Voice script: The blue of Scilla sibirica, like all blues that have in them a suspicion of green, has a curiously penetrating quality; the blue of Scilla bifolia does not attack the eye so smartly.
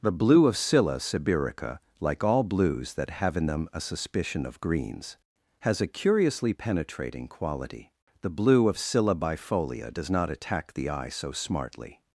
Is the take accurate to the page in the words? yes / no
no